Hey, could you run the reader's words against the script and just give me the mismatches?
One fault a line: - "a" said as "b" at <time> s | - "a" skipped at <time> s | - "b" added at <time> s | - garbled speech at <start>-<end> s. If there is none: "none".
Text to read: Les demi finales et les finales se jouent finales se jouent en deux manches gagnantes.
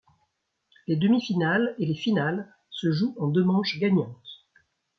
- "finales se jouent" skipped at 3.2 s